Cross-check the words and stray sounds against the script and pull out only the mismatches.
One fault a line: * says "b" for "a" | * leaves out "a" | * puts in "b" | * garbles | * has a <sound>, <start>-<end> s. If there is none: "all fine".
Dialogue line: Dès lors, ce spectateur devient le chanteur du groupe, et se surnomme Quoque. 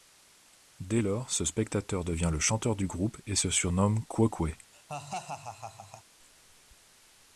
* has a laugh, 4.7-6.0 s